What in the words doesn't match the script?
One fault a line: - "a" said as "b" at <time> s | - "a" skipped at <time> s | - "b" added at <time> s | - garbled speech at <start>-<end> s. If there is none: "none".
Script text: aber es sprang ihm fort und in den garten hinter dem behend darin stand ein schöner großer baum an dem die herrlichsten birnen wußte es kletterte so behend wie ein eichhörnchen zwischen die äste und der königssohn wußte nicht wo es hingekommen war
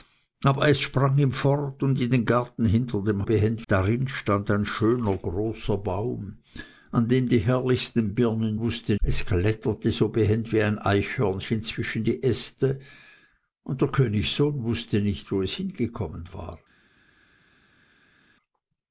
none